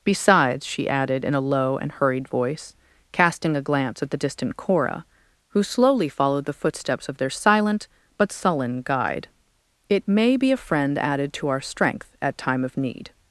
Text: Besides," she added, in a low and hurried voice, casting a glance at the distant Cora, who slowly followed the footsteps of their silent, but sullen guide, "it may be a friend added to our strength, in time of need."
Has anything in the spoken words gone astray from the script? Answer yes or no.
yes